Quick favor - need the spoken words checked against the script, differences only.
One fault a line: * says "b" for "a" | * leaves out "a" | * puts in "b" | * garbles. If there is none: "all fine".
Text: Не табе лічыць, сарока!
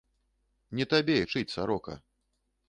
all fine